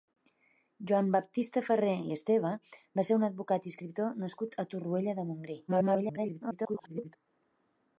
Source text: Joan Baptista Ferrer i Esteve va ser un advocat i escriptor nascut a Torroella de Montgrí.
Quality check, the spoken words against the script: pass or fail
fail